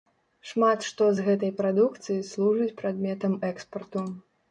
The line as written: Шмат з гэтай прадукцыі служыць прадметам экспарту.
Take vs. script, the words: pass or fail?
fail